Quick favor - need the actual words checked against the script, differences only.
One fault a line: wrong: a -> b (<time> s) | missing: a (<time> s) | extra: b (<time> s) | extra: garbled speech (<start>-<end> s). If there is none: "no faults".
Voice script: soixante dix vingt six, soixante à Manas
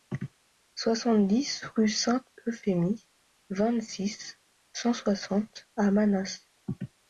extra: rue Sainte Euphémie (1.6 s)
extra: cent (4.7 s)